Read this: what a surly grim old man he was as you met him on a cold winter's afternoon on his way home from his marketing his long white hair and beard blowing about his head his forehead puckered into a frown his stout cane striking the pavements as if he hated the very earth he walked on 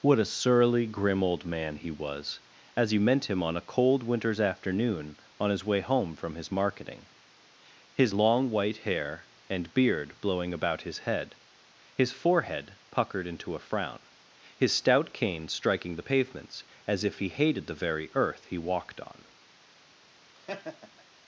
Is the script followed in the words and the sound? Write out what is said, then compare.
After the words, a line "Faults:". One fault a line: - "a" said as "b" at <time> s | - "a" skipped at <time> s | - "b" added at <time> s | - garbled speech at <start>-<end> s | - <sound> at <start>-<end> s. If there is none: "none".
what a surly grim old man he was as you meant him on a cold winter's afternoon on his way home from his marketing his long white hair and beard blowing about his head his forehead puckered into a frown his stout cane striking the pavements as if he hated the very earth he walked on
Faults:
- "met" said as "meant" at 3.0 s
- laugh at 20.3-21.0 s